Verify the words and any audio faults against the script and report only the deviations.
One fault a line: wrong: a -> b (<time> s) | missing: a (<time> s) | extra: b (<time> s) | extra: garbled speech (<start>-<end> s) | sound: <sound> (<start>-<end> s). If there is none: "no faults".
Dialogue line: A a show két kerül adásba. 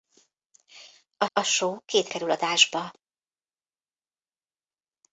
no faults